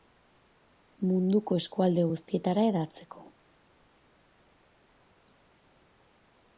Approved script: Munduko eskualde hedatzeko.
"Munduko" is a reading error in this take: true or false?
false